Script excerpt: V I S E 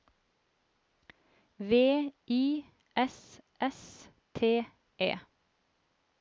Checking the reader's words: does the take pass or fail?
fail